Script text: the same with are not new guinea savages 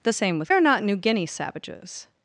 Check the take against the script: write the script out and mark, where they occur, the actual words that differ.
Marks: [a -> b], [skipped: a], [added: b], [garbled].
the same with are not new guinea savages